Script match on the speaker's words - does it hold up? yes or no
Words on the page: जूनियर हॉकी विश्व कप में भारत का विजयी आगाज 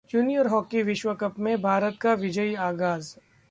yes